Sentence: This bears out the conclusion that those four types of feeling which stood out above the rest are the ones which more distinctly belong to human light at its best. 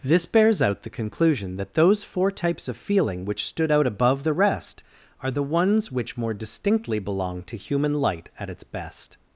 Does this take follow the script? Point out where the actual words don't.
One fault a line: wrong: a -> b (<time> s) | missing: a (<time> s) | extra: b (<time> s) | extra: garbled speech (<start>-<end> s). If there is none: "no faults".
no faults